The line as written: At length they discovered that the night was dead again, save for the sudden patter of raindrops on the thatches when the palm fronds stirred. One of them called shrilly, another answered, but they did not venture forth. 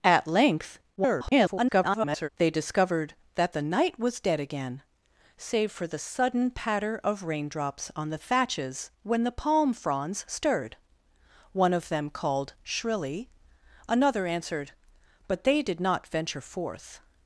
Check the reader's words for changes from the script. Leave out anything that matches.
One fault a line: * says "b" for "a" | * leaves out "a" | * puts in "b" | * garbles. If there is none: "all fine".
* garbles